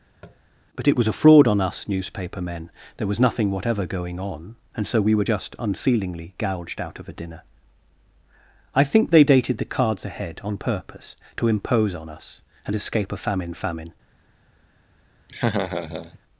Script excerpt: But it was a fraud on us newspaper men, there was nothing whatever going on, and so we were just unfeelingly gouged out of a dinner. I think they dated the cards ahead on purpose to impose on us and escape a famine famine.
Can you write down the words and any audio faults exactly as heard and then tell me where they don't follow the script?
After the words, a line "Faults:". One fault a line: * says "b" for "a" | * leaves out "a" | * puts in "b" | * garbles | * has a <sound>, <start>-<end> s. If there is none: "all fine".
But it was a fraud on us newspaper men, there was nothing whatever going on, and so we were just unfeelingly gouged out of a dinner. I think they dated the cards ahead on purpose to impose on us and escape a famine famine.
Faults:
* has a tap, 0.2-0.4 s
* has a laugh, 15.3-16.2 s